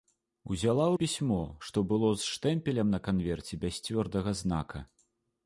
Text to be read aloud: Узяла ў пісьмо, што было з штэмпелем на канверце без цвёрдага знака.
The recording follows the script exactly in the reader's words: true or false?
true